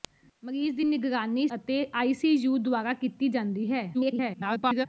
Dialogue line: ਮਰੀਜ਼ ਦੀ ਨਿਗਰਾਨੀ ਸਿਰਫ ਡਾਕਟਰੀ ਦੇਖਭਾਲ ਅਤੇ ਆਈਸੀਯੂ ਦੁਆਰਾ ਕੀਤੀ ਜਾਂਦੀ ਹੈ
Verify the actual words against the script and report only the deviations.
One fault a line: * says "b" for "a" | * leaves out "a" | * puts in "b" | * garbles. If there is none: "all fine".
* leaves out "ਸਿਰਫ ਡਾਕਟਰੀ ਦੇਖਭਾਲ"
* garbles